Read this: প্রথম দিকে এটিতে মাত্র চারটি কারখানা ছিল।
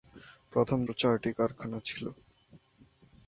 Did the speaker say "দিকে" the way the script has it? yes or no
no